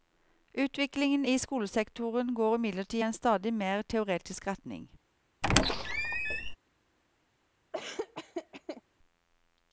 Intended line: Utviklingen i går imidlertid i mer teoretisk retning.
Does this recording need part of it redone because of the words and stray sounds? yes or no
yes